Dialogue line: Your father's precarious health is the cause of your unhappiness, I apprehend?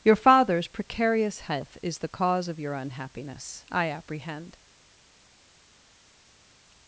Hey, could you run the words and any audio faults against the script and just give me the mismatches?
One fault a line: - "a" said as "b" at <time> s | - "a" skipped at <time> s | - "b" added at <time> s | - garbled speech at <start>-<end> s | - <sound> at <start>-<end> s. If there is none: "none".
none